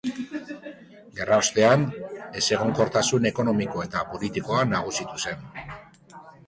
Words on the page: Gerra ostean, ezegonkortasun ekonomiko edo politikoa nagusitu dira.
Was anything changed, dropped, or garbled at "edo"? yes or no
yes